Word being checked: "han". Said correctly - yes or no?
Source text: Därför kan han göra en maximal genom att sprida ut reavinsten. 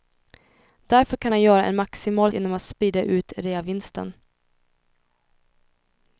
yes